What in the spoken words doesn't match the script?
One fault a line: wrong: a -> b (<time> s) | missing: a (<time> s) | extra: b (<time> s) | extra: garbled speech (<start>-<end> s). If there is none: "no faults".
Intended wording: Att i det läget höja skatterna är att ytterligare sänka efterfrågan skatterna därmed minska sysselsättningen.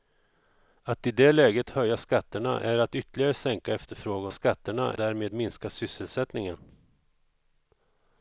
no faults